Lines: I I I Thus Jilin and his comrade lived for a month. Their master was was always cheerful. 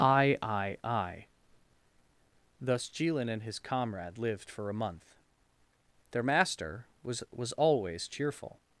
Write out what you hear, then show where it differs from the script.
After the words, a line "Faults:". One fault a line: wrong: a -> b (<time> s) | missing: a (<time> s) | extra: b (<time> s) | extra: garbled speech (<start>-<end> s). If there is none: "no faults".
I I I Thus Jilin and his comrade lived for a month. Their master was was always cheerful.
Faults:
no faults